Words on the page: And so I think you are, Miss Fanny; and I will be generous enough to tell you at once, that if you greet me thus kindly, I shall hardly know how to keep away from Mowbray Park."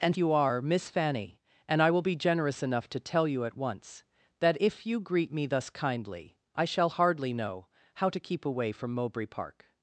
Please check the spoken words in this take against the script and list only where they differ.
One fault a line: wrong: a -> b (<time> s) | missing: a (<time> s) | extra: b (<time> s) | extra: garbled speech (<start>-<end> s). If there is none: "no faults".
missing: so I think (0.2 s)